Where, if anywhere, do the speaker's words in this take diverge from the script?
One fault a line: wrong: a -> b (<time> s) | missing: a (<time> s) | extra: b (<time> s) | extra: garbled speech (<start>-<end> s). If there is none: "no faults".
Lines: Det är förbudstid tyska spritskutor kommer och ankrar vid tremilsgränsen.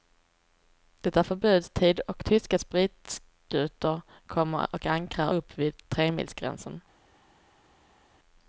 extra: och (2.0 s)
extra: upp (5.3 s)